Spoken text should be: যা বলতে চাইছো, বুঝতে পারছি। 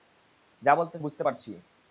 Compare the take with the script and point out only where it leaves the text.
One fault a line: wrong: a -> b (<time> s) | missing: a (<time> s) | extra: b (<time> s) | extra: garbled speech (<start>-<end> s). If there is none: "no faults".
missing: চাইছো (1.0 s)